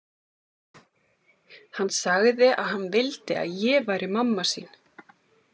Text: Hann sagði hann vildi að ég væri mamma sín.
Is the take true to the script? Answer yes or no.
no